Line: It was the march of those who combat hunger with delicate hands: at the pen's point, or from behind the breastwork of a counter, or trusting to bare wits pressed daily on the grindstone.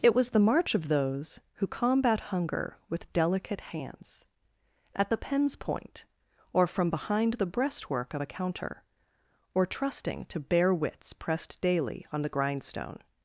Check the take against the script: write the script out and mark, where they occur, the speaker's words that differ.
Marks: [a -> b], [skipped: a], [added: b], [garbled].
It was the march of those who combat hunger with delicate hands: at the pen's point, or from behind the breastwork of a counter, or trusting to bare wits pressed daily on the grindstone.